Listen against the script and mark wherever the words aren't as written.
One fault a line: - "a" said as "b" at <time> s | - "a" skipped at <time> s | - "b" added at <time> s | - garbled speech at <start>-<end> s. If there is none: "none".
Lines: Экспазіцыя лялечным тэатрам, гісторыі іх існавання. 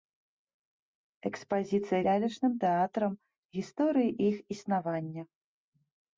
none